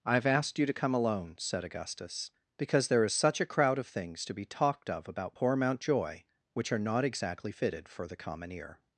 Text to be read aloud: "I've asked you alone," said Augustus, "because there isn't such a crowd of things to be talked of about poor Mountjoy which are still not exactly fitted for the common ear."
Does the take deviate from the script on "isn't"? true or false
true